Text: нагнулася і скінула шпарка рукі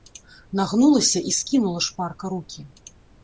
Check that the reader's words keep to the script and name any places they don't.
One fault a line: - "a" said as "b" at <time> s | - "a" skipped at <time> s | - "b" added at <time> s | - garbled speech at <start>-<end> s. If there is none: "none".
none